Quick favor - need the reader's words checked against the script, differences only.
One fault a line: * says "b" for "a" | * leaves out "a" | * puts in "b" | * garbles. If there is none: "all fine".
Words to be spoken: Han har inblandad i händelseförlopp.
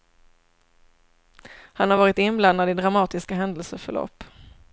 * puts in "varit"
* puts in "dramatiska"